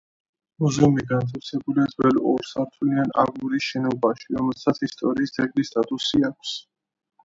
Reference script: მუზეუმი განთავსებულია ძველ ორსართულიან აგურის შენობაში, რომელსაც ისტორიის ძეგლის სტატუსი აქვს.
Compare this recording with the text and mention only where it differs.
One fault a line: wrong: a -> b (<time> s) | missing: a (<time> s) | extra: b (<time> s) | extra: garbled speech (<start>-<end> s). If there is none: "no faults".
no faults